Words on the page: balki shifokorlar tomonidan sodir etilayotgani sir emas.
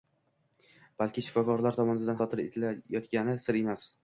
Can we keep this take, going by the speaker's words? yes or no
yes